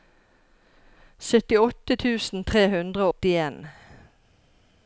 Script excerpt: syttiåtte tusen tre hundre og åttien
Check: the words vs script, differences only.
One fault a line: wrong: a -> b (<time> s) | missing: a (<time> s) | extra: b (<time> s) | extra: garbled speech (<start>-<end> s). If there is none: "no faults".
missing: og (3.1 s)